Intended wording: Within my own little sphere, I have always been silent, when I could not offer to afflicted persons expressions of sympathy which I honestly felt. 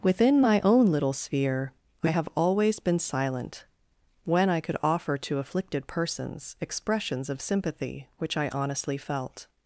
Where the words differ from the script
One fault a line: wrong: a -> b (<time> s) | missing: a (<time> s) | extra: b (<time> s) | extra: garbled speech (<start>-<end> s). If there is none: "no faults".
missing: not (4.8 s)